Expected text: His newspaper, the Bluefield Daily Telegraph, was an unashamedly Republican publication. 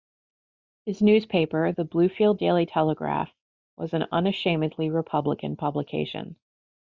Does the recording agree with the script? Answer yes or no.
yes